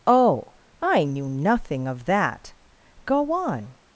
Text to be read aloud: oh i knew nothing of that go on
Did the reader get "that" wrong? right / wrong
right